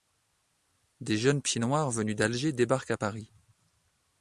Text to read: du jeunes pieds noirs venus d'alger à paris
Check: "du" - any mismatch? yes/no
yes